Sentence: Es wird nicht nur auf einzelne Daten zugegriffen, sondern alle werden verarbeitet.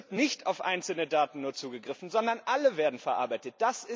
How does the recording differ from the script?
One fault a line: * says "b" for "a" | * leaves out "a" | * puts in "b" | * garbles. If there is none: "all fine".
all fine